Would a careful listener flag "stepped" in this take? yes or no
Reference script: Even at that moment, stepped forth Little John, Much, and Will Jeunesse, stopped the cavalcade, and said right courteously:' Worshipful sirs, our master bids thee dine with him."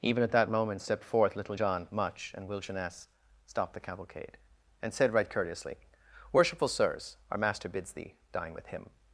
no